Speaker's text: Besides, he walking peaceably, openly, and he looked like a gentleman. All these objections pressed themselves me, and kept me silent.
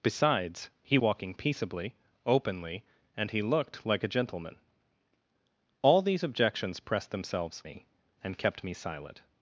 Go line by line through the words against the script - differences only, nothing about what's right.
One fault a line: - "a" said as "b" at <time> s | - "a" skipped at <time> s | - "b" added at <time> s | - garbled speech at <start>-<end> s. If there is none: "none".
none